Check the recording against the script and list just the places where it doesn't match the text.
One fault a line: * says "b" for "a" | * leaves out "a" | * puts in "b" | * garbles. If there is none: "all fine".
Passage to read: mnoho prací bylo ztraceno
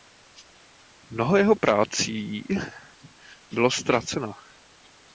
* puts in "jeho"